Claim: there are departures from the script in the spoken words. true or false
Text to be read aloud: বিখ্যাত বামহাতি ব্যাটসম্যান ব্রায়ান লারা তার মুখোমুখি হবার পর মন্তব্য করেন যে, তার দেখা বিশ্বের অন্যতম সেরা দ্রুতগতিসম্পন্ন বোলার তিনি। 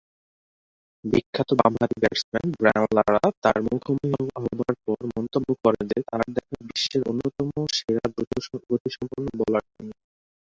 false